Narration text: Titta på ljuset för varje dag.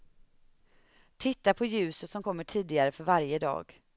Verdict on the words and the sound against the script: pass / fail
fail